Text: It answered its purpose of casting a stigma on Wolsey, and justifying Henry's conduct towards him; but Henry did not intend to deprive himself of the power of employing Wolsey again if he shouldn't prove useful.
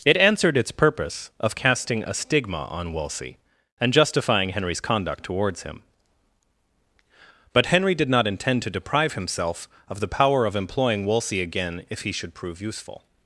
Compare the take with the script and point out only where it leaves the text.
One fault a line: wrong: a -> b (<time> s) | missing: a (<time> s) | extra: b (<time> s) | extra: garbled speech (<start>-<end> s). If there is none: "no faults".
wrong: shouldn't -> should (12.1 s)